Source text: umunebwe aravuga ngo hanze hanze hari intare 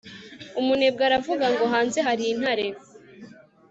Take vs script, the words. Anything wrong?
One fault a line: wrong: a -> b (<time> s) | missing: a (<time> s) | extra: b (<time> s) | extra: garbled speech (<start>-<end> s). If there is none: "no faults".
missing: hanze (2.0 s)